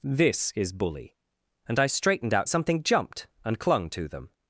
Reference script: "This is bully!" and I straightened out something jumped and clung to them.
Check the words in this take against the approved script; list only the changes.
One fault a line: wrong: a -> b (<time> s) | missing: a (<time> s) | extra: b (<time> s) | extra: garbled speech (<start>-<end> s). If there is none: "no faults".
no faults